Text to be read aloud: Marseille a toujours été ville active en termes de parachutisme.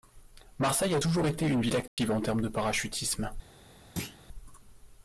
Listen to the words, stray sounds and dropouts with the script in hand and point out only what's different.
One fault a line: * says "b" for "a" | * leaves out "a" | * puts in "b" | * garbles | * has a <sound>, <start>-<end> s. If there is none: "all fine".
* puts in "une"
* has a dropout, 1.9-2.0 s
* has a thud, 4.0-4.2 s